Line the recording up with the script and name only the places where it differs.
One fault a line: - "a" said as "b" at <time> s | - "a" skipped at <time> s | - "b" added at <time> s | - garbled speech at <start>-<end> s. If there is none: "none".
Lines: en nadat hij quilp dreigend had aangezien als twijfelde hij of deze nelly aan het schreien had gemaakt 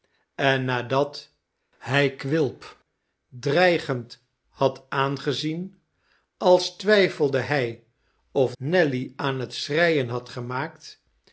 - "deze" skipped at 8.6 s